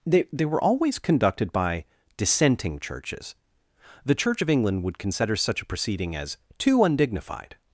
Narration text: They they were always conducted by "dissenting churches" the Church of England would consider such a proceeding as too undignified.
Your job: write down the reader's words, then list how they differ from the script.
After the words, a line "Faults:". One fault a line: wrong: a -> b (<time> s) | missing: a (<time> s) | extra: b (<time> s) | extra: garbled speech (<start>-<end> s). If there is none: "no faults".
They they were always conducted by "dissenting churches" the Church of England would consider such a proceeding as too undignified.
Faults:
no faults